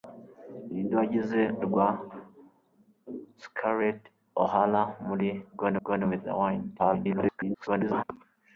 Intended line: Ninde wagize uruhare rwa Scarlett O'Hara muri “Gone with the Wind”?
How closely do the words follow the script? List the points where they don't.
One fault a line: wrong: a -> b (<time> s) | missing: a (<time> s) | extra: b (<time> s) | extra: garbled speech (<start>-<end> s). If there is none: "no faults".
missing: uruhare (1.4 s)
extra: gone (5.8 s)
extra: garbled speech (6.8-8.0 s)